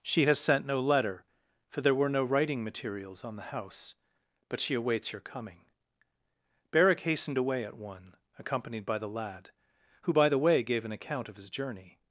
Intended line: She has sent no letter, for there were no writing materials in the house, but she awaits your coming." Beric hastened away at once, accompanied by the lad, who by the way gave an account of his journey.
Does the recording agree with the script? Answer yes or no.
no